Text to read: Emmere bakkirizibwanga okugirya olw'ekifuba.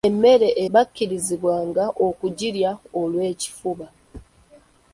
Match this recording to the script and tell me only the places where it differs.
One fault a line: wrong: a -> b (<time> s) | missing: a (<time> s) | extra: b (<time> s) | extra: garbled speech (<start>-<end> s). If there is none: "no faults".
no faults